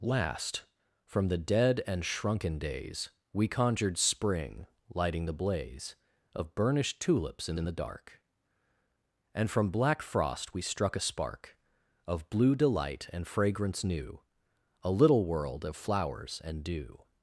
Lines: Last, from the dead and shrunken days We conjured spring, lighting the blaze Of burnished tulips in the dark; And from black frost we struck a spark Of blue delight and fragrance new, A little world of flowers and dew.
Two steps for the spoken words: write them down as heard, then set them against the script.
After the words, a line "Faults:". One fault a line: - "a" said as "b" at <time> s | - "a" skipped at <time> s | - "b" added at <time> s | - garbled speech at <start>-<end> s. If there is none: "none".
Last, from the dead and shrunken days We conjured spring, lighting the blaze Of burnished tulips in in the dark; And from black frost we struck a spark Of blue delight and fragrance new, A little world of flowers and dew.
Faults:
- "in" added at 7.6 s